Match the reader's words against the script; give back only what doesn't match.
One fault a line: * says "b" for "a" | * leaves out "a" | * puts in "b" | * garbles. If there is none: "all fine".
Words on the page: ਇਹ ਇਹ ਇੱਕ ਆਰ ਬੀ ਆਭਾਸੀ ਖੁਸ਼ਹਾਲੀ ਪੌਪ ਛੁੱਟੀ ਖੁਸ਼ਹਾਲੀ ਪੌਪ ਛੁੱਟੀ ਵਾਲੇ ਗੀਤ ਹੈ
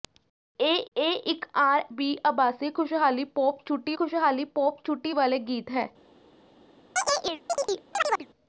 all fine